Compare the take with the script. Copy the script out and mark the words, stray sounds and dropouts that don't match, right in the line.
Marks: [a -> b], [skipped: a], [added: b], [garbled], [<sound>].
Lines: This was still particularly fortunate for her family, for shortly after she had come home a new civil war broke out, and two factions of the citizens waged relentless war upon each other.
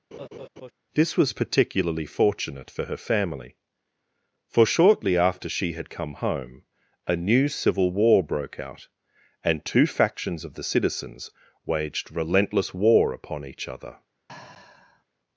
[laugh] This was [skipped: still] particularly fortunate for her family, for shortly after she had come home a new civil war broke out, and two factions of the citizens waged relentless war upon each other. [sigh]